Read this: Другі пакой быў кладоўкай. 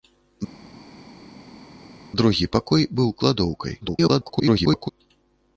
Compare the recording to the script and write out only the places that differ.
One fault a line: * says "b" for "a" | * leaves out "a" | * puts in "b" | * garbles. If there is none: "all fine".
* garbles